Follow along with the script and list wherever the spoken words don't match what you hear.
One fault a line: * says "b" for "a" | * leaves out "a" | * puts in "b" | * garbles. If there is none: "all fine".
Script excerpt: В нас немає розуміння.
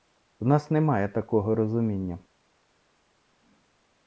* puts in "такого"